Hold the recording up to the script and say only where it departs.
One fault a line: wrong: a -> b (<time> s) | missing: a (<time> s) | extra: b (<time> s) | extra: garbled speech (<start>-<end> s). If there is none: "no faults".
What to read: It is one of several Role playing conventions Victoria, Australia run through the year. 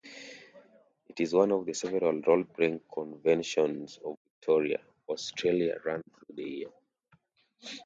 extra: of (4.0 s)